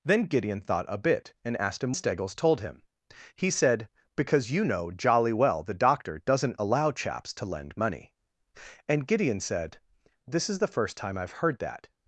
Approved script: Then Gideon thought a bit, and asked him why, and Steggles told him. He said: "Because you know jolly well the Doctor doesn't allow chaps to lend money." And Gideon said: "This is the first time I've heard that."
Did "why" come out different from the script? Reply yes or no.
yes